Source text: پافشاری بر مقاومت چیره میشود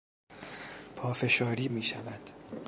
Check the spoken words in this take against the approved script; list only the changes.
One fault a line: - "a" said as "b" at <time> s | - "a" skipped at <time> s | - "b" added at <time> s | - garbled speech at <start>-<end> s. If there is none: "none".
- "بر مقاومت چیره" skipped at 1.7 s